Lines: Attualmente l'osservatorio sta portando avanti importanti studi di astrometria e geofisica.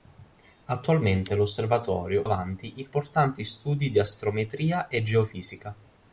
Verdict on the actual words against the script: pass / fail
fail